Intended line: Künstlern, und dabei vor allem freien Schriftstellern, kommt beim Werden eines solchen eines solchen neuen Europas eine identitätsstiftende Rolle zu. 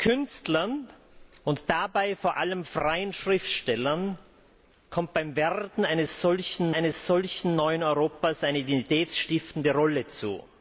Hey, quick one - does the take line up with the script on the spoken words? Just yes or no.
yes